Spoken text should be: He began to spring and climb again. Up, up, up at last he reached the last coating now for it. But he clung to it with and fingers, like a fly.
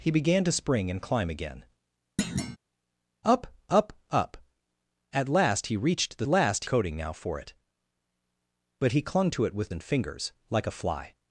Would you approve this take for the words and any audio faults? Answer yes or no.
no